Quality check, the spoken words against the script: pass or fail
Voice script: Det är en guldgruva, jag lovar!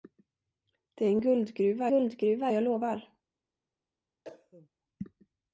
fail